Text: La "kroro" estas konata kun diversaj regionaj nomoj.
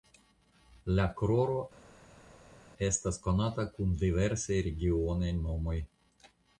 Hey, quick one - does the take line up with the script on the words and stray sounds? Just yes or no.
yes